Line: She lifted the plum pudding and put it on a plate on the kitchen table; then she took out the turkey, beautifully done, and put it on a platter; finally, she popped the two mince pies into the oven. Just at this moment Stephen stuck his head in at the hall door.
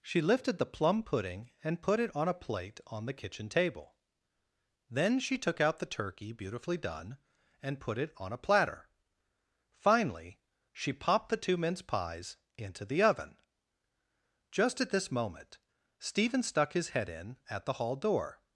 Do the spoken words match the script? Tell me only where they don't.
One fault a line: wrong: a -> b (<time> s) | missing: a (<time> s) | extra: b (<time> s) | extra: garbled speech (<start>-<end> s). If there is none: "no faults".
no faults